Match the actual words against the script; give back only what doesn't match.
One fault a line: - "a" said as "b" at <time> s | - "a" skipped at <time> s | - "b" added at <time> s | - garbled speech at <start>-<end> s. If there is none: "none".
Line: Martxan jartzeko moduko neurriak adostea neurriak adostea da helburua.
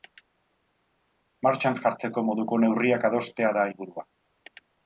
- "neurriak adostea" skipped at 3.5 s